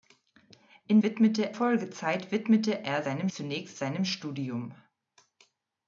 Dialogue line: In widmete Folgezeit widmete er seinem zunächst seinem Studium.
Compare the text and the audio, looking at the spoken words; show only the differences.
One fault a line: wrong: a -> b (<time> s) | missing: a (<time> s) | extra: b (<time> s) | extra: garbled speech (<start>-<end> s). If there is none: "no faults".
no faults